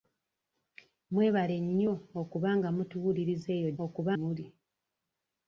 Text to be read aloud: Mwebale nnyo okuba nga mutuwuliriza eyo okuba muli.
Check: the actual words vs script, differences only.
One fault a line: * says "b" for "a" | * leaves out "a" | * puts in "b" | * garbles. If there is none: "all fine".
all fine